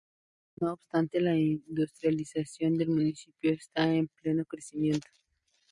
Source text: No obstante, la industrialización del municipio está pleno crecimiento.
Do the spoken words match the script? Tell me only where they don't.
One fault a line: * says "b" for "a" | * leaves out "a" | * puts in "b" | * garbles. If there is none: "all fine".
* puts in "en"